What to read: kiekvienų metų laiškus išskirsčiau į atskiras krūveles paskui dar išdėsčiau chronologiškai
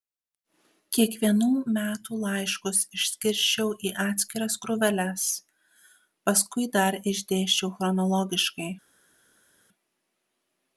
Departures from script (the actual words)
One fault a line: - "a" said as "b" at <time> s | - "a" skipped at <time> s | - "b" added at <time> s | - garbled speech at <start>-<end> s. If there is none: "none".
none